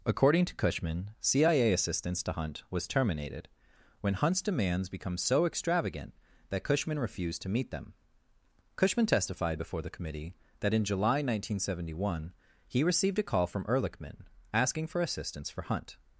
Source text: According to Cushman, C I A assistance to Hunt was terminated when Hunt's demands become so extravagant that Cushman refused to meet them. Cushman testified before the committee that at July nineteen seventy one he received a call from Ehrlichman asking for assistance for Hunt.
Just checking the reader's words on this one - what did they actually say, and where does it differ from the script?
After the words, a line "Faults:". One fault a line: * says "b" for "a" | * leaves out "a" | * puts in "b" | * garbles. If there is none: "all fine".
According to Cushman, C I A assistance to Hunt was terminated when Hunt's demands become so extravagant that Cushman refused to meet them. Cushman testified before the committee that in July nineteen seventy one he received a call from Ehrlichman asking for assistance for Hunt.
Faults:
* says "in" for "at"